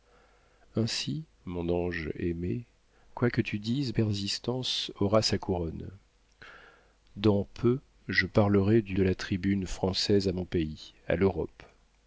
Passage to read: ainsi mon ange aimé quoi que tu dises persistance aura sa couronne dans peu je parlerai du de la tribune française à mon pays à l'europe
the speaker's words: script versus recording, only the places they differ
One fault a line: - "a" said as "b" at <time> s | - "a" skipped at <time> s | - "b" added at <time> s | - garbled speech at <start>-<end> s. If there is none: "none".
none